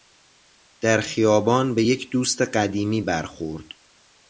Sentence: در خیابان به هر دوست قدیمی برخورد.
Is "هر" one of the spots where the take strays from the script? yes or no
yes